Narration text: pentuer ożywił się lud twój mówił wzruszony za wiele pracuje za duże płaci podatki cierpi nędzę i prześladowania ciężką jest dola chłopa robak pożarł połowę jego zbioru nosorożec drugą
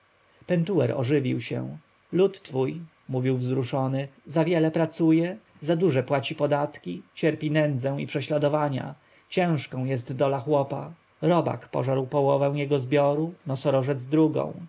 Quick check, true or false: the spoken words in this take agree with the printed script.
true